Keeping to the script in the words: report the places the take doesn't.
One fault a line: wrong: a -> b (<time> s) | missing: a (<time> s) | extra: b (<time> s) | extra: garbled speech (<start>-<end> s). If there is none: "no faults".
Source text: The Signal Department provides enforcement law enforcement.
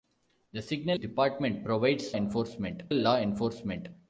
no faults